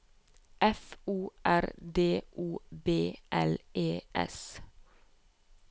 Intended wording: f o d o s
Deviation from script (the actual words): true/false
true